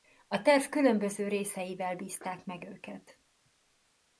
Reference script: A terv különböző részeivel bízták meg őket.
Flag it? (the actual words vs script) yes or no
no